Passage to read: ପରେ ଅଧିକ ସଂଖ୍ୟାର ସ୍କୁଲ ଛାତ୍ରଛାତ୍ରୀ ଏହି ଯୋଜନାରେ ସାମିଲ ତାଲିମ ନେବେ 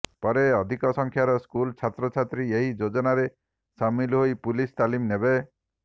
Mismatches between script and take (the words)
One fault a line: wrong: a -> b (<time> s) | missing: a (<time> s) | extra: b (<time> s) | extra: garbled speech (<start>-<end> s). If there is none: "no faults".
extra: ହୋଇ ପୁଲିସ (4.2 s)